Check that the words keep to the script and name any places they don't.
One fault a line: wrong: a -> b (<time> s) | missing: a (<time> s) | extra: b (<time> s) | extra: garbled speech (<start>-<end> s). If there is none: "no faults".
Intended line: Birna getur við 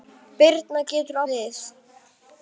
no faults